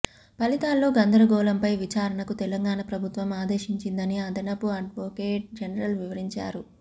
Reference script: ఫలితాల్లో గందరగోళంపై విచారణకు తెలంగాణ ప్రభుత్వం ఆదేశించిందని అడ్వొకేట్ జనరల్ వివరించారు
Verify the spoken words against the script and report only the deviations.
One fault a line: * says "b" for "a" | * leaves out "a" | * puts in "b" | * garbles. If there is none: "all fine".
* puts in "అదనపు"